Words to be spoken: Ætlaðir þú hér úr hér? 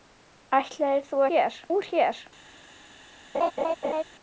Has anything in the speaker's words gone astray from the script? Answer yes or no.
no